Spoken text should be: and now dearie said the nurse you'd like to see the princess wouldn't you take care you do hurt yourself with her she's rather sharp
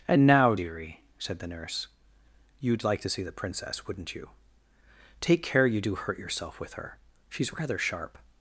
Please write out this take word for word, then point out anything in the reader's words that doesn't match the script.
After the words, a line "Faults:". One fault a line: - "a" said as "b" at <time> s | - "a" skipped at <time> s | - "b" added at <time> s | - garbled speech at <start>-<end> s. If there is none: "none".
and now dearie said the nurse you'd like to see the princess wouldn't you take care you do hurt yourself with her she's rather sharp
Faults:
none